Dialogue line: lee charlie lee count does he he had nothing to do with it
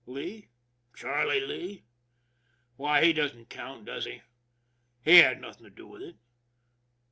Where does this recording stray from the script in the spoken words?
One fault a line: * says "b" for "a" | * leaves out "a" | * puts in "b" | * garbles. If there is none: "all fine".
* puts in "why he doesn't"